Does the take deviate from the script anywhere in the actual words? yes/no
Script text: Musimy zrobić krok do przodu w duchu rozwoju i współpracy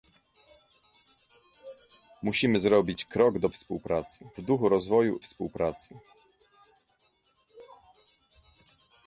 yes